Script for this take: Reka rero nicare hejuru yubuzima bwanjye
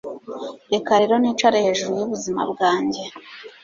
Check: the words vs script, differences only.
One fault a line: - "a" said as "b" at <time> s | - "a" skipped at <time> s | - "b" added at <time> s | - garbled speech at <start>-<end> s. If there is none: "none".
none